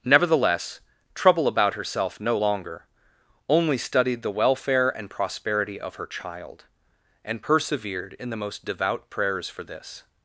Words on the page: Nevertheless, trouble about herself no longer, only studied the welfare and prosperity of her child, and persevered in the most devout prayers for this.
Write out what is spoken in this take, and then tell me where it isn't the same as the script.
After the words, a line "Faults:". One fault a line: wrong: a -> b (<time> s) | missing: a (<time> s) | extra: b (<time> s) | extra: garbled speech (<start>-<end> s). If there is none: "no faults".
Nevertheless, trouble about herself no longer, only studied the welfare and prosperity of her child, and persevered in the most devout prayers for this.
Faults:
no faults